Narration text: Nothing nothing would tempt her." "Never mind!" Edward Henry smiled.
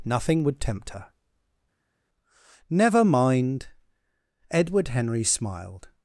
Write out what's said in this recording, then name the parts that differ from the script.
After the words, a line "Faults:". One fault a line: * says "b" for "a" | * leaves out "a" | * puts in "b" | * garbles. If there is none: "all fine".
Nothing would tempt her." "Never mind!" Edward Henry smiled.
Faults:
* leaves out "nothing"